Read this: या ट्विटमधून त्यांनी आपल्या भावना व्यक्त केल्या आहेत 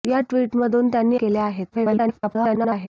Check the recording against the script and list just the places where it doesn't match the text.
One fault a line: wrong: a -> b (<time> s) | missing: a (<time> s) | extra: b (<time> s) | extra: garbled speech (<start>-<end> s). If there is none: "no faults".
missing: आपल्या भावना व्यक्त (1.2 s)
extra: garbled speech (1.7-2.9 s)